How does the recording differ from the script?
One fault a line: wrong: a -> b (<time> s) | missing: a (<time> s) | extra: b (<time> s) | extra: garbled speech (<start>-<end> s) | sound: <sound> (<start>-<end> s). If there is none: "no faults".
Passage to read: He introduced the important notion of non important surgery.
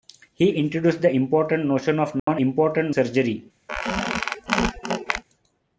sound: dropout (2.2-2.3 s)
sound: squeak (3.7-5.2 s)